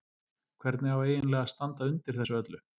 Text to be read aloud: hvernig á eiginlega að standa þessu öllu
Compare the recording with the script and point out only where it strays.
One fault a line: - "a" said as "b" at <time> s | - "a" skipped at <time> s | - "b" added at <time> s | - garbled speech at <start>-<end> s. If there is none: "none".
- "undir" added at 1.9 s